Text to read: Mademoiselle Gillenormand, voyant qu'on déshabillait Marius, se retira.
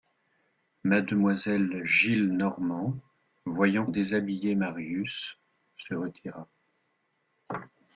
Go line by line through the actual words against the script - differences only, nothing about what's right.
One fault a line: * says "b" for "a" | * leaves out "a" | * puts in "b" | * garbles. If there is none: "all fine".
* leaves out "qu'on"